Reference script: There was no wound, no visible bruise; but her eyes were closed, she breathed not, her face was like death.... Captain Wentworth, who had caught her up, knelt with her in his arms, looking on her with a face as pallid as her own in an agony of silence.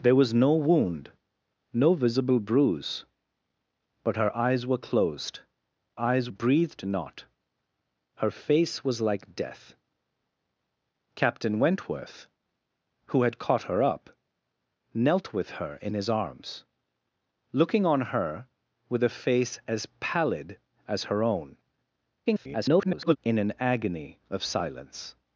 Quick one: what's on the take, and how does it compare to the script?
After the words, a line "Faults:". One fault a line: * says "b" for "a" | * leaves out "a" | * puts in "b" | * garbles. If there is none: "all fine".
There was no wound, no visible bruise; but her eyes were closed, eyes breathed not, her face was like death.... Captain Wentworth, who had caught her up, knelt with her in his arms, looking on her with a face as pallid as her own [garbled] in an agony of silence.
Faults:
* says "eyes" for "she"
* garbles